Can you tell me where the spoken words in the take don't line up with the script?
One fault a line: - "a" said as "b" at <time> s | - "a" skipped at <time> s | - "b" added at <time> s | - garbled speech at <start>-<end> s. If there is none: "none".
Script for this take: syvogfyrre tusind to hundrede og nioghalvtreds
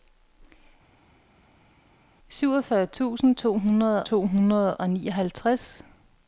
- "to hundrede" added at 4.0 s